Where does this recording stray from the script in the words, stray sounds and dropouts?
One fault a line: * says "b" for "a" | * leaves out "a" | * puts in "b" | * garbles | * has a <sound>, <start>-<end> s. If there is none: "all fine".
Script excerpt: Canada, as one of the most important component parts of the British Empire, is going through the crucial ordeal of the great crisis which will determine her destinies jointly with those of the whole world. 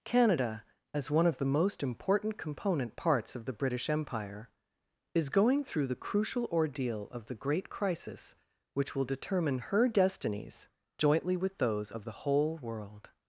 all fine